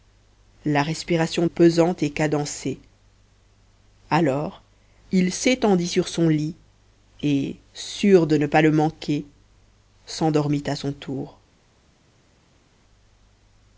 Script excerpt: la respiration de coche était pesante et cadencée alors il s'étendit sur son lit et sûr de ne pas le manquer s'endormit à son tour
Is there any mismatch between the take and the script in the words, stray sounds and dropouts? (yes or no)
yes